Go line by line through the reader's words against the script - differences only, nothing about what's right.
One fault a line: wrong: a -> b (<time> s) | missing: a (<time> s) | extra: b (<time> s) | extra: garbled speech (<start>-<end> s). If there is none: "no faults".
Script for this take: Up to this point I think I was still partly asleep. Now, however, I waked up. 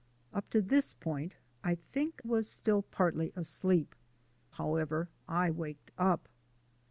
missing: I (2.2 s)
missing: Now (4.0 s)